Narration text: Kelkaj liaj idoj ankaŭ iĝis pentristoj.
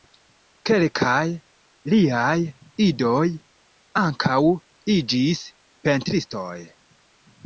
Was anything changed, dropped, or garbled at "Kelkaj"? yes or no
no